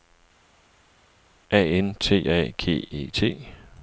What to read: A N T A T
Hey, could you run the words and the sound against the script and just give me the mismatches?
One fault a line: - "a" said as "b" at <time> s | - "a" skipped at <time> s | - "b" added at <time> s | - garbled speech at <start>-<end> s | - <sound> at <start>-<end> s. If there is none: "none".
- "G E" added at 2.6 s